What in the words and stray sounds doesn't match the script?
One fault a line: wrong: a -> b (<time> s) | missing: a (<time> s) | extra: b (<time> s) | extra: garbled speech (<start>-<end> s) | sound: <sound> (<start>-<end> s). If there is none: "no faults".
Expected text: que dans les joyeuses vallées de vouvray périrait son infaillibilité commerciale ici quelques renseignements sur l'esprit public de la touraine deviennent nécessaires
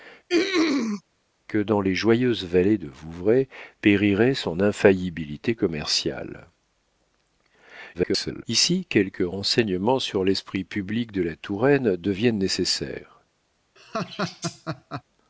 sound: throat clearing (0.3-1.0 s)
extra: garbled speech (7.9-8.4 s)
sound: laugh (13.8-15.0 s)